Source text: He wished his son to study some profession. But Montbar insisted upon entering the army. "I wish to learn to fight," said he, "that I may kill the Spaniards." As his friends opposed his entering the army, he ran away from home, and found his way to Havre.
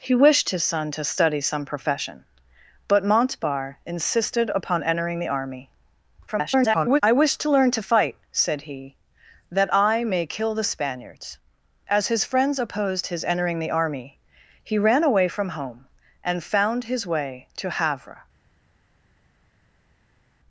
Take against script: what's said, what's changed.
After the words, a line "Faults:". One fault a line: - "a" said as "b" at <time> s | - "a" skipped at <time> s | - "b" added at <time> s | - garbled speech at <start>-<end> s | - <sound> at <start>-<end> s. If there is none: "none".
He wished his son to study some profession. But Montbar insisted upon entering the army. [garbled] "I wish to learn to fight," said he, "that I may kill the Spaniards." As his friends opposed his entering the army, he ran away from home, and found his way to Havre.
Faults:
- garbled speech at 6.3-7.0 s